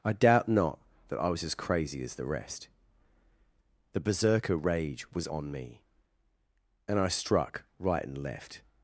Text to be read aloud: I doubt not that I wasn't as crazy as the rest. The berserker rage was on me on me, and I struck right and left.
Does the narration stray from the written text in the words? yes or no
yes